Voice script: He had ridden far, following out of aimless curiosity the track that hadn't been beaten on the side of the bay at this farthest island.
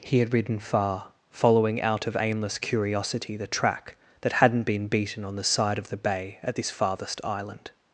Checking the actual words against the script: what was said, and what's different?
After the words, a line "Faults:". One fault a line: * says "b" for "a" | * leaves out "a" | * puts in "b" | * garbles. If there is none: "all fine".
He had ridden far, following out of aimless curiosity the track that hadn't been beaten on the side of the bay at this farthest island.
Faults:
all fine